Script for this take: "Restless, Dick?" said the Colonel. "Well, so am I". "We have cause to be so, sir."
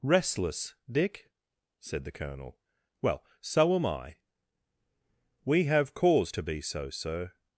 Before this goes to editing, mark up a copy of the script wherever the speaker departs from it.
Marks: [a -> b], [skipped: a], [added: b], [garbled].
"Restless, Dick?" said the Colonel. "Well, so am I". "We have cause to be so, sir."